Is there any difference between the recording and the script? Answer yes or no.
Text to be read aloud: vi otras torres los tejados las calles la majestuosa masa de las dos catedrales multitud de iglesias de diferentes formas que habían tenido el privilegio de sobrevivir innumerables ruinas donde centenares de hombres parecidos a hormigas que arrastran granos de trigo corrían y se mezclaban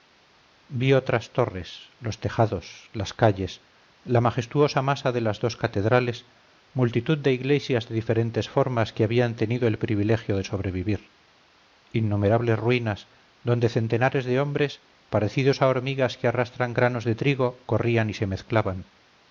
no